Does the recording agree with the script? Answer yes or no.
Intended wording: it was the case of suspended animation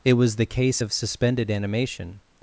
yes